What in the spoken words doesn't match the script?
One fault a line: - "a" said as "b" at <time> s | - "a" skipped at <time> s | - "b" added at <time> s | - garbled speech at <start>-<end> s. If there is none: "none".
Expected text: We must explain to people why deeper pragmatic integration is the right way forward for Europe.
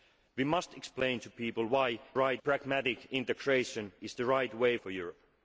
- "deeper" said as "right" at 2.1 s
- "forward" skipped at 4.8 s